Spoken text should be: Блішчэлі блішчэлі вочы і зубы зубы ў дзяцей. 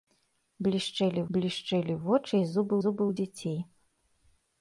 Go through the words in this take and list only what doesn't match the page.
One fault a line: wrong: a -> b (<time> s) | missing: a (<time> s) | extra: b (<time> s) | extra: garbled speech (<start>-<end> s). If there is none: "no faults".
no faults